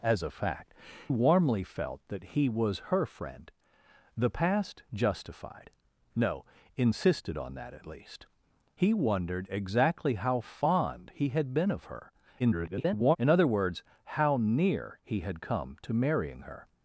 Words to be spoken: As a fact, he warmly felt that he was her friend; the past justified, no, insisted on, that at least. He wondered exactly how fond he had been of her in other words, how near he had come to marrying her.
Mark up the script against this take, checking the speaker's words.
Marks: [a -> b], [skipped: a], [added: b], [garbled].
As a fact, [skipped: he] warmly felt that he was her friend; the past justified, no, insisted on, that at least. He wondered exactly how fond he had been of her [garbled] in other words, how near he had come to marrying her.